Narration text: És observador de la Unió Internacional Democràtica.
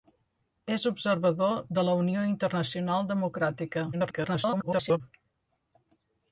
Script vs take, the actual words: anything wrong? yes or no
yes